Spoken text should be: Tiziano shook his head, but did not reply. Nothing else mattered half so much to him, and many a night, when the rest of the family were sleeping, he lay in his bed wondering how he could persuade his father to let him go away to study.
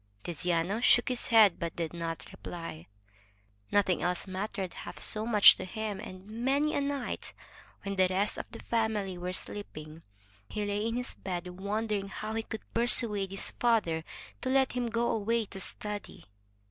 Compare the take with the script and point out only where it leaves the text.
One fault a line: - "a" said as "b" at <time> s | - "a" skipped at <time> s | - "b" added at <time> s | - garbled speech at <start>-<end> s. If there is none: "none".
none